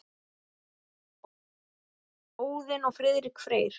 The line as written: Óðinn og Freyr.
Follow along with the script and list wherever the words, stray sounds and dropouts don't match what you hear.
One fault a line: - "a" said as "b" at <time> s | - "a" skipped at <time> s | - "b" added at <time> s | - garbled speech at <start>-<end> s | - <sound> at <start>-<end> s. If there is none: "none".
- "Friðrik" added at 3.0 s